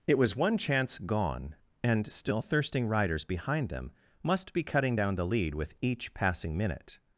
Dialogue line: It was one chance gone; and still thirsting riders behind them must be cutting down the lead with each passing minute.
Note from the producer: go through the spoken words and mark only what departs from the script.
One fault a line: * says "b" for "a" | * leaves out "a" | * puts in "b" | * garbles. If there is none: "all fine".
all fine